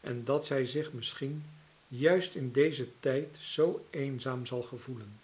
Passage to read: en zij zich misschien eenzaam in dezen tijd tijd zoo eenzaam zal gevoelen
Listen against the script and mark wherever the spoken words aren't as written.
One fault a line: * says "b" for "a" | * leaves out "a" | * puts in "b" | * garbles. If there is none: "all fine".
* puts in "dat"
* says "juist" for "eenzaam"
* leaves out "tijd"